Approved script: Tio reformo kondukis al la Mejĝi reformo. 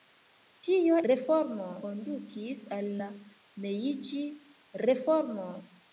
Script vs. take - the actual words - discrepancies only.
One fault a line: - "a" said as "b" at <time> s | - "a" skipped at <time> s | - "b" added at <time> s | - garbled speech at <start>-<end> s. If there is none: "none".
none